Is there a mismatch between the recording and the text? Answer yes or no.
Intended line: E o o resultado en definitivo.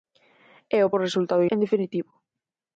no